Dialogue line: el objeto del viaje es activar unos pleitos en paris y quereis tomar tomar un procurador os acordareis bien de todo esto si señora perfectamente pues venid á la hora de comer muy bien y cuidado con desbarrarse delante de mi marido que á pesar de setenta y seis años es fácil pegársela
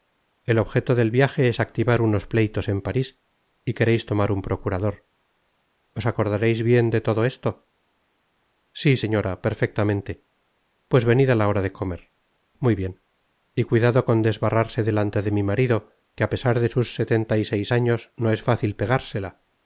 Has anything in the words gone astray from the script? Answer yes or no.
yes